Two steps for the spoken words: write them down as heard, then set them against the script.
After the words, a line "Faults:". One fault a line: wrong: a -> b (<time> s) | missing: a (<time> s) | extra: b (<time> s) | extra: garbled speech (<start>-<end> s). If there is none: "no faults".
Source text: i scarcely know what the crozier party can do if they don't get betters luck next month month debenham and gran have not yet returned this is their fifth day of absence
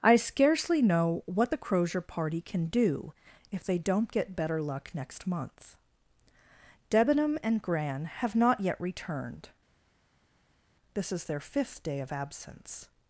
i scarcely know what the crozier party can do if they don't get better luck next month debenham and gran have not yet returned this is their fifth day of absence
Faults:
wrong: betters -> better (4.4 s)
missing: month (5.8 s)